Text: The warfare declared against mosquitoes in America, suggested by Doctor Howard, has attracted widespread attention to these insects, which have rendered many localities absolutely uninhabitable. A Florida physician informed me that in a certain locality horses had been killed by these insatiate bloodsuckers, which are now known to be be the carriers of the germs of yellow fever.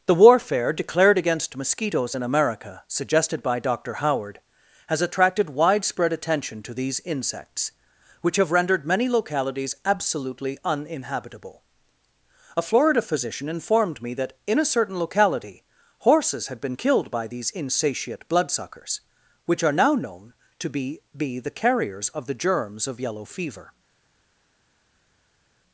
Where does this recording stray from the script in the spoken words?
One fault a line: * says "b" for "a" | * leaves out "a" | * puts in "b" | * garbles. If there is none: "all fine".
all fine